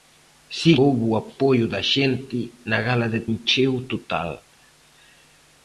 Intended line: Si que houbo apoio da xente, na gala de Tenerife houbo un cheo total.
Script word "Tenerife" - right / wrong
wrong